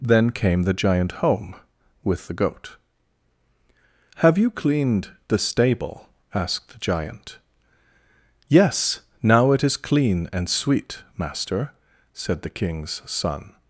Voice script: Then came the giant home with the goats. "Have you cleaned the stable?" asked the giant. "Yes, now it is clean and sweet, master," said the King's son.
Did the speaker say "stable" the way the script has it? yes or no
yes